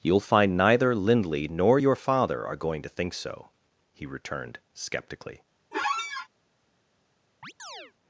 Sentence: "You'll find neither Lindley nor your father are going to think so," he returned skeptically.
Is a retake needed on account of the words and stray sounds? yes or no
yes